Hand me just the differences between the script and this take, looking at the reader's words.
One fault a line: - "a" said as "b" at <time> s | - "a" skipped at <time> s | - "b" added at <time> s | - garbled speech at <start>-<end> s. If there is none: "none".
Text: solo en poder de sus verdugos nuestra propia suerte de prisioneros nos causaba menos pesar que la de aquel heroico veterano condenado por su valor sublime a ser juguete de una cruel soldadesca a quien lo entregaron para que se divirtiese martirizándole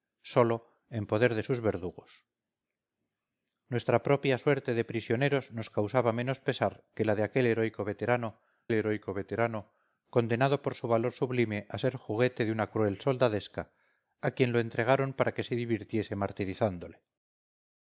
- "heroico veterano" added at 8.7 s